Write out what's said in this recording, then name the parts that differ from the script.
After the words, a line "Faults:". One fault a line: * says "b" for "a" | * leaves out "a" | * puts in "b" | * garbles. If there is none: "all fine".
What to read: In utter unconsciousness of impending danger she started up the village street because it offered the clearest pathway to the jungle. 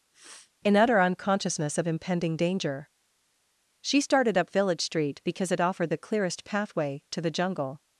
In utter unconsciousness of impending danger she started up village street because it offered the clearest pathway to the jungle.
Faults:
* leaves out "the"